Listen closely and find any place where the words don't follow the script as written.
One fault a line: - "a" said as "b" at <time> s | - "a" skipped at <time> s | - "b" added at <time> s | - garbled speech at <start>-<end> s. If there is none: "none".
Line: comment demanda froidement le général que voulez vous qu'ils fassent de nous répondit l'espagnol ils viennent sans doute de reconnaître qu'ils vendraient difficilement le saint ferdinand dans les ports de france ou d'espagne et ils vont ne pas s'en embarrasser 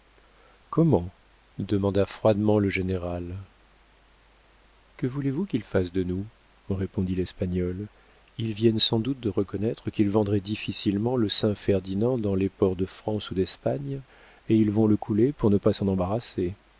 - "le couler pour" added at 14.9 s